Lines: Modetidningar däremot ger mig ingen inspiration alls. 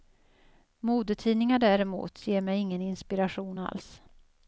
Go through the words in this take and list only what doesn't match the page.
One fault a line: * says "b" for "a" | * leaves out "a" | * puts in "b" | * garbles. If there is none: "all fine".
all fine